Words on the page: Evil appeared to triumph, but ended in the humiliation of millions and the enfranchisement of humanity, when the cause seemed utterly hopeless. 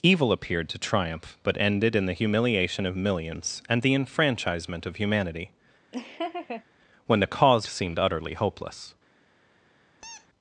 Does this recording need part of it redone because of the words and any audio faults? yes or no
yes